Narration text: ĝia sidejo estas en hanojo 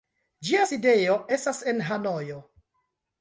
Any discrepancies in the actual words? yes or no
no